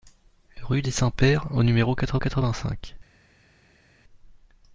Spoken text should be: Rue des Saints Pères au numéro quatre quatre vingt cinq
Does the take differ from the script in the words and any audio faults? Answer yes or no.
no